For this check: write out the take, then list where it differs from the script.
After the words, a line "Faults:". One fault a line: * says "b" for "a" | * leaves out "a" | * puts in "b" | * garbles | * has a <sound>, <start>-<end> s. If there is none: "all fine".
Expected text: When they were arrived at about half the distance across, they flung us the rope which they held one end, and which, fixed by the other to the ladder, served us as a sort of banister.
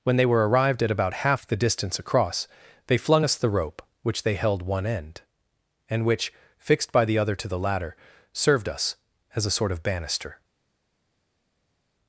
When they were arrived at about half the distance across, they flung us the rope which they held one end, and which, fixed by the other to the ladder, served us as a sort of banister.
Faults:
all fine